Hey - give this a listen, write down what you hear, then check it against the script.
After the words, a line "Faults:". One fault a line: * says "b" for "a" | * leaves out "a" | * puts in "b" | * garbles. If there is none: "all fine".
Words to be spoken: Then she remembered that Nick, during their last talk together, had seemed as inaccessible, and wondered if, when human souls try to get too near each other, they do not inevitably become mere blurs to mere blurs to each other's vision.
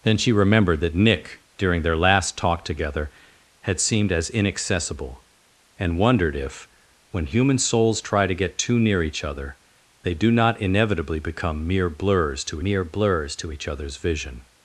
Then she remembered that Nick, during their last talk together, had seemed as inaccessible, and wondered if, when human souls try to get too near each other, they do not inevitably become mere blurs to mere blurs to each other's vision.
Faults:
all fine